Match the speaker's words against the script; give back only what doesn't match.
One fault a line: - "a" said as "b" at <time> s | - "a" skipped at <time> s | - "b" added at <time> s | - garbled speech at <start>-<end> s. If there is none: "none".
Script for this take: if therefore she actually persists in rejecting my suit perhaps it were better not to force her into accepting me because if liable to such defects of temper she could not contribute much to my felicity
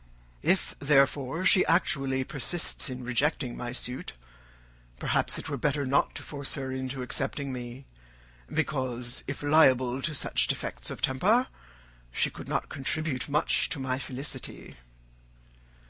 none